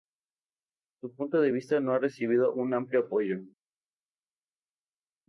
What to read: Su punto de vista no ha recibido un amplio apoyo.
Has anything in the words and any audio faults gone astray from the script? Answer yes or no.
no